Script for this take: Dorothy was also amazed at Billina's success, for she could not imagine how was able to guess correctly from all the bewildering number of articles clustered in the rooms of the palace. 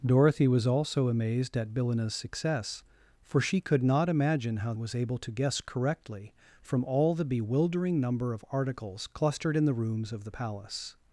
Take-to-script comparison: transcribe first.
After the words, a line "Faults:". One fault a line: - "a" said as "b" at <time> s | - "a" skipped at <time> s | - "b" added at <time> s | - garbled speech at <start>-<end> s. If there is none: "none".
Dorothy was also amazed at Billina's success, for she could not imagine how was able to guess correctly from all the bewildering number of articles clustered in the rooms of the palace.
Faults:
none